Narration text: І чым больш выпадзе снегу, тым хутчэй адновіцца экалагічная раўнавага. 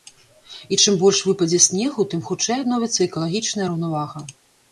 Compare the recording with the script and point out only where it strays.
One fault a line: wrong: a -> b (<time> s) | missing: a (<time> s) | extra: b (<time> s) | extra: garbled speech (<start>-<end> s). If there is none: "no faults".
no faults